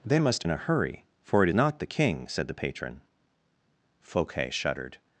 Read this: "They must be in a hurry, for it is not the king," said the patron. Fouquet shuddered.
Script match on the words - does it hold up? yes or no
no